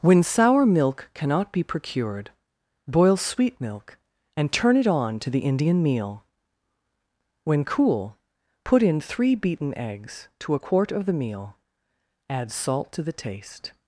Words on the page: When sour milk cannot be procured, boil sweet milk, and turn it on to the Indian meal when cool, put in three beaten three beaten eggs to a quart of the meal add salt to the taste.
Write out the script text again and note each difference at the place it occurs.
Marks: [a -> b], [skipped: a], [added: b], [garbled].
When sour milk cannot be procured, boil sweet milk, and turn it on to the Indian meal when cool, put in three beaten [skipped: three beaten] eggs to a quart of the meal add salt to the taste.